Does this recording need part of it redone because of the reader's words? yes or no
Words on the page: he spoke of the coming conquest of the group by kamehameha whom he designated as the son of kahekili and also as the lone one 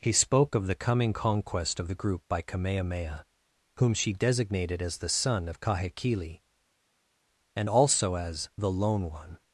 yes